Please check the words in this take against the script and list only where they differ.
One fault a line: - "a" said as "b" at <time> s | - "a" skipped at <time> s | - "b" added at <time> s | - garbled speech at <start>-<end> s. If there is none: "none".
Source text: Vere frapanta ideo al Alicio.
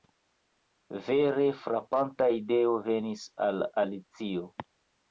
- "venis" added at 2.9 s